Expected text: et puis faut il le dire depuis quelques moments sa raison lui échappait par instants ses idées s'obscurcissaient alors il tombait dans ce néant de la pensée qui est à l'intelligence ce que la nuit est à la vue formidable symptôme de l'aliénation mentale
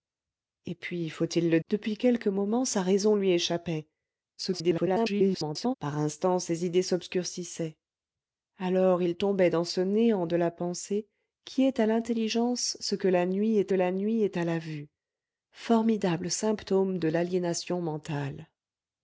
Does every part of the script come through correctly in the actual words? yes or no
no